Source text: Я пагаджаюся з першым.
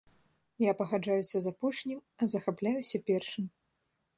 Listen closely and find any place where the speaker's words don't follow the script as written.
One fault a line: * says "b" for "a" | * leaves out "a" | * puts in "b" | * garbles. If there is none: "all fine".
* puts in "апошнім а захапляюся"